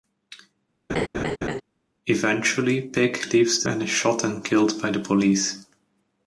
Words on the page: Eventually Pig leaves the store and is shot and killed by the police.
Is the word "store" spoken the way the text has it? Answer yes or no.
no